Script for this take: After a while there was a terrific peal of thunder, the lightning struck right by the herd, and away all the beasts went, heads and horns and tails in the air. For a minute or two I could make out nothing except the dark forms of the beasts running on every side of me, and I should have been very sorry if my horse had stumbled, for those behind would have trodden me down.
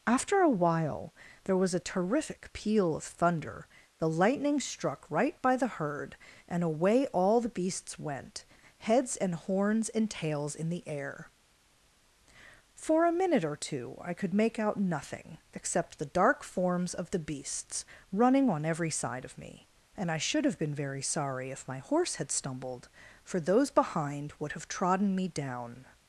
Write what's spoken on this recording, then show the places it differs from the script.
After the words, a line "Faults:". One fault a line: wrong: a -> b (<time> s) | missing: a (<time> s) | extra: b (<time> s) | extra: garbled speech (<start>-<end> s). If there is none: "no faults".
After a while there was a terrific peal of thunder, the lightning struck right by the herd, and away all the beasts went, heads and horns and tails in the air. For a minute or two I could make out nothing except the dark forms of the beasts running on every side of me, and I should have been very sorry if my horse had stumbled, for those behind would have trodden me down.
Faults:
no faults